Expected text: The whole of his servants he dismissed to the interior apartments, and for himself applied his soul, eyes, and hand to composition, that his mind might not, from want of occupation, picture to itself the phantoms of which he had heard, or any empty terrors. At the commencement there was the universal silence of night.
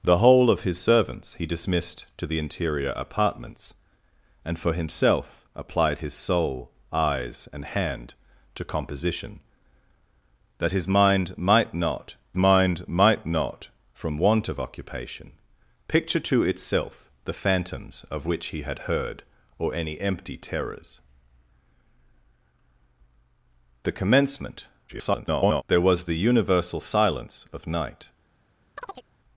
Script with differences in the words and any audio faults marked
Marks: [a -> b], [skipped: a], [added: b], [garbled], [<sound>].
The whole of his servants he dismissed to the interior apartments, and for himself applied his soul, eyes, and hand to composition, that his mind might not, [added: mind might not] from want of occupation, picture to itself the phantoms of which he had heard, or any empty terrors. [skipped: At] the commencement [garbled] there was the universal silence of night. [chirp]